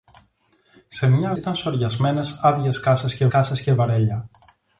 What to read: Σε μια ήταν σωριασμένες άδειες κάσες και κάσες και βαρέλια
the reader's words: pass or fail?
pass